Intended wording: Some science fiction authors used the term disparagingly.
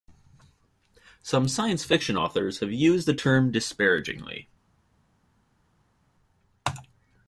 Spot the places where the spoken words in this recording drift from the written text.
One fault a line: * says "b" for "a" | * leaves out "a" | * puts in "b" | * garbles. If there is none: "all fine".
* puts in "have"